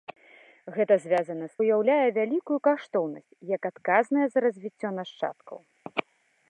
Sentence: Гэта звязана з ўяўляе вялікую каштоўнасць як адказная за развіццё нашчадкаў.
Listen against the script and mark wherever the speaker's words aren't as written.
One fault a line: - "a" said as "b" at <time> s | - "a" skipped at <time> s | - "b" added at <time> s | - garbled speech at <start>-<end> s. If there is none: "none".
none